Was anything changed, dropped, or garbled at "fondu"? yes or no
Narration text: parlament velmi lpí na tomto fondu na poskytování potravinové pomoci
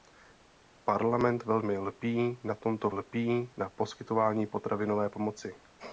yes